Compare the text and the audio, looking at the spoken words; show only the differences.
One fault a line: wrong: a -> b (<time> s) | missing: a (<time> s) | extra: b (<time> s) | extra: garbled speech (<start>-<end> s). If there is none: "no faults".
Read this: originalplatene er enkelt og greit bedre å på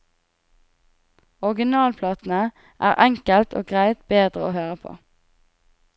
extra: høre (4.6 s)